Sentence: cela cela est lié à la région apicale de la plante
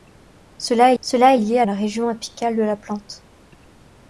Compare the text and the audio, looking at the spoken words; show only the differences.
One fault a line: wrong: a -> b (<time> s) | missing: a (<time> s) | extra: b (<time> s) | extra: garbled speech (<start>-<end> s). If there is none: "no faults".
no faults